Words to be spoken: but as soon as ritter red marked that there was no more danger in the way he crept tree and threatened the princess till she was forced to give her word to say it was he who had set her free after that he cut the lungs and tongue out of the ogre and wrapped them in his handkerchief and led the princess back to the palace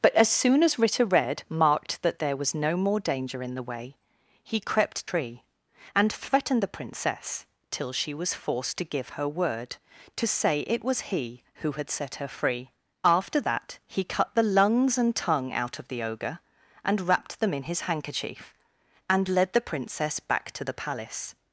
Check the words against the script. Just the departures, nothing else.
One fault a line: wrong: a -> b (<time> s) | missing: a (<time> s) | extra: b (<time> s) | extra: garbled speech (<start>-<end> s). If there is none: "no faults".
no faults